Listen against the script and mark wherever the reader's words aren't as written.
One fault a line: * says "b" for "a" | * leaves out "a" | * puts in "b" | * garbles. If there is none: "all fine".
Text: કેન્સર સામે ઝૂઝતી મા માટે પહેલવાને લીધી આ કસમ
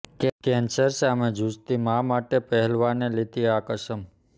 all fine